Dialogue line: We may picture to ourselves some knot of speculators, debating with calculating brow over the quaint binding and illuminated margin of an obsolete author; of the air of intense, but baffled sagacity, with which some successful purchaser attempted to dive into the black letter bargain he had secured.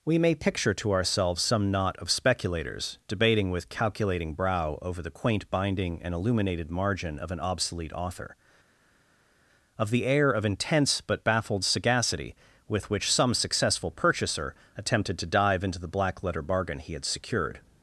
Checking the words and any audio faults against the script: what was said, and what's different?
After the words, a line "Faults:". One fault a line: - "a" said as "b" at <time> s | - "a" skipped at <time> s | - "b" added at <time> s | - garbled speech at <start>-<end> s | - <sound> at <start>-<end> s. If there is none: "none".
We may picture to ourselves some knot of speculators, debating with calculating brow over the quaint binding and illuminated margin of an obsolete author; of the air of intense, but baffled sagacity, with which some successful purchaser attempted to dive into the black letter bargain he had secured.
Faults:
none